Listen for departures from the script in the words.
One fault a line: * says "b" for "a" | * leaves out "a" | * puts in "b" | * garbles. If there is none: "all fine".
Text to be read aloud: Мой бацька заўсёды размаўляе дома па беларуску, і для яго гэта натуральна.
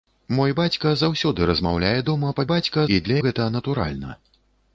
* says "бацька" for "беларуску"
* leaves out "яго"